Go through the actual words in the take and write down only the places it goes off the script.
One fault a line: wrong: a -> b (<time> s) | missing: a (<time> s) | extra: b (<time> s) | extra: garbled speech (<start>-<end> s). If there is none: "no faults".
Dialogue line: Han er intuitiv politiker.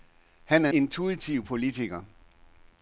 no faults